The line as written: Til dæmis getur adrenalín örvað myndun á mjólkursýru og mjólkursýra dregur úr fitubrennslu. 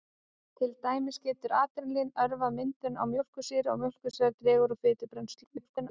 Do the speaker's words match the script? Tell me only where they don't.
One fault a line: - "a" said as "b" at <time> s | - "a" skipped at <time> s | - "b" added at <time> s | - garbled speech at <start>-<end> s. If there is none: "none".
- garbled speech at 5.4-5.9 s